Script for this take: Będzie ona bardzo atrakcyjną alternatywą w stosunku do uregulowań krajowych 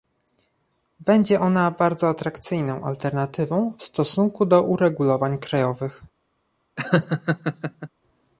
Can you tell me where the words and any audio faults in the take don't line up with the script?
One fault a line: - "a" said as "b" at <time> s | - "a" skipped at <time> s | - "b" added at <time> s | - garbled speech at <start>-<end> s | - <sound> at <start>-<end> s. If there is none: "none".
- laugh at 6.8-7.9 s